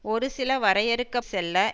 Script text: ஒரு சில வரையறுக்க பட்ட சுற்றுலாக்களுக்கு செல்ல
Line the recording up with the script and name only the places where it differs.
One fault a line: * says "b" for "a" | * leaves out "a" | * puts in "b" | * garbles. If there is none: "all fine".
* leaves out "பட்ட சுற்றுலாக்களுக்கு"